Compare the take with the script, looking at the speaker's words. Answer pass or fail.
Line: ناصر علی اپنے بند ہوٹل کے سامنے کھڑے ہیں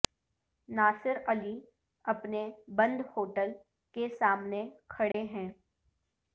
pass